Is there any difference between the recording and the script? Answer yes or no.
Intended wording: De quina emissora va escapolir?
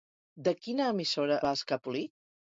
no